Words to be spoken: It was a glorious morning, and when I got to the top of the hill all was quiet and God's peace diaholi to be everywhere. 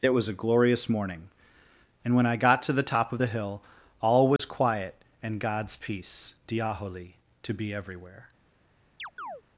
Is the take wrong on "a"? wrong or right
right